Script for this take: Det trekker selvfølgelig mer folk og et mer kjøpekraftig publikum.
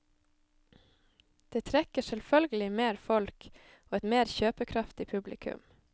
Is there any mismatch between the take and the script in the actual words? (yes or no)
no